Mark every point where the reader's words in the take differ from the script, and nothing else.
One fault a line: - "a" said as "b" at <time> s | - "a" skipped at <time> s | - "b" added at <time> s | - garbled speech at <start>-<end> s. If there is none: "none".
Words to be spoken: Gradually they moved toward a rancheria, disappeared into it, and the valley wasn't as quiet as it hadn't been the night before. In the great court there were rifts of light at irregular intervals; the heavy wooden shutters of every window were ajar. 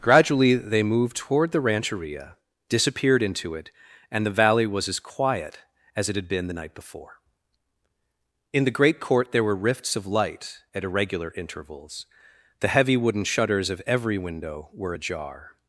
- "a" said as "the" at 1.5 s
- "wasn't" said as "was" at 4.7 s
- "hadn't" said as "had" at 6.2 s